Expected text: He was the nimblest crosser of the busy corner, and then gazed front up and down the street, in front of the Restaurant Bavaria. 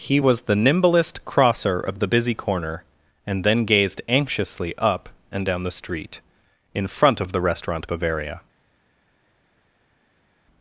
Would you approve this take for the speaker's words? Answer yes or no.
no